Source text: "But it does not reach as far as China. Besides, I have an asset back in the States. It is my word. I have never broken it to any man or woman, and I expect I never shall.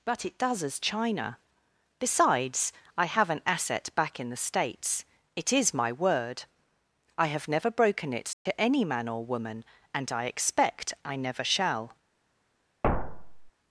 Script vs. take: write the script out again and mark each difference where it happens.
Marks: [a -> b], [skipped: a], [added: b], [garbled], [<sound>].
"But it does [skipped: not reach as far] as China. Besides, I have an asset back in the States. It is my word. I have never broken it to [dropout] any man or woman, and I expect I never shall. [thud]